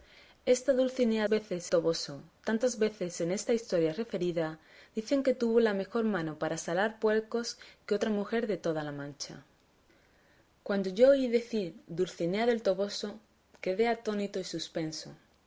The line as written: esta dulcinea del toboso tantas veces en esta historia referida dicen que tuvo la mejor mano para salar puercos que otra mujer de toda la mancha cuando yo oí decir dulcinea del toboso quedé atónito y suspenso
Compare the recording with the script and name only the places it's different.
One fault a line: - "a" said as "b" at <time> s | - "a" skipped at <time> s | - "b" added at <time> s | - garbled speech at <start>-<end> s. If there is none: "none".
- "del" said as "veces" at 1.3 s